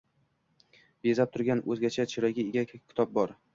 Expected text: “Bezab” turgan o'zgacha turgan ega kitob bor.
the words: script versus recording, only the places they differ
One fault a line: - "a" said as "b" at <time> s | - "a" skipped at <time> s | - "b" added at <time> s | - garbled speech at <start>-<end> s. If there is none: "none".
- "turgan" said as "chiroyga" at 2.1 s